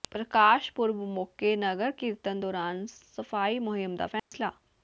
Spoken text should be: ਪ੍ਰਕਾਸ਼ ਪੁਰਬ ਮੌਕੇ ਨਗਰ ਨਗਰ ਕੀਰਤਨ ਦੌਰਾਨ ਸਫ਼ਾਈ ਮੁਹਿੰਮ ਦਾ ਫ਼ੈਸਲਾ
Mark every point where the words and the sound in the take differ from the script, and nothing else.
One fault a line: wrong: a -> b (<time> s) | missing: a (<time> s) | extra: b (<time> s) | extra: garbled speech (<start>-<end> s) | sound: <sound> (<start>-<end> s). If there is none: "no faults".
missing: ਨਗਰ (1.9 s)
sound: dropout (4.2-4.3 s)